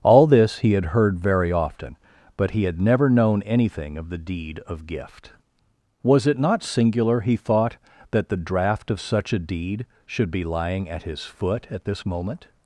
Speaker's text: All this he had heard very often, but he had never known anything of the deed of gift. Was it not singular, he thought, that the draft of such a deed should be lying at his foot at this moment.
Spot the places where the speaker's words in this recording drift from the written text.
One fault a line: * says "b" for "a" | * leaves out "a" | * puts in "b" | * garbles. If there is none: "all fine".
all fine